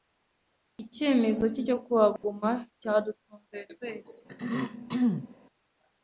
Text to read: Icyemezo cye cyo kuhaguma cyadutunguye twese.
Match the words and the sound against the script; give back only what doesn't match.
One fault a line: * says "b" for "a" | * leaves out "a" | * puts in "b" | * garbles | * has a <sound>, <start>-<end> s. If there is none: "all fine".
* has a dropout, 2.2-2.2 s
* has a throat clearing, 4.3-5.3 s